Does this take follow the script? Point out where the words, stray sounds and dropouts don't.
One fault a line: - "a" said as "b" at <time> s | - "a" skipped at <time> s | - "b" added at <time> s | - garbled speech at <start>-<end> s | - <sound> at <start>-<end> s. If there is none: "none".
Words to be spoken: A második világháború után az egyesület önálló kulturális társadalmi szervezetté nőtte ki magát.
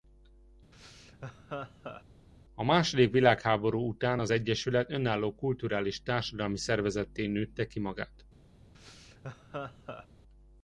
- laugh at 0.7-2.0 s
- laugh at 8.7-10.1 s